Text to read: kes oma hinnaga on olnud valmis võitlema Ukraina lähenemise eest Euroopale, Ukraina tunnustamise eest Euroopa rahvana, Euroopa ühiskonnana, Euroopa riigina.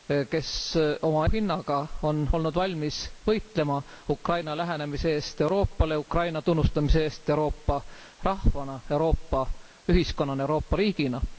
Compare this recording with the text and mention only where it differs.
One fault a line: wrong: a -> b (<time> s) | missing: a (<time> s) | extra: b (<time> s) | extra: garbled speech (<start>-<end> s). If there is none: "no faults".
no faults